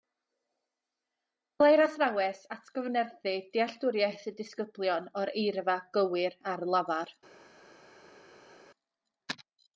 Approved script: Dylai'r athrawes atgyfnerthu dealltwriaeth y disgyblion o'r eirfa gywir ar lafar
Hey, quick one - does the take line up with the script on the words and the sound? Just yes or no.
yes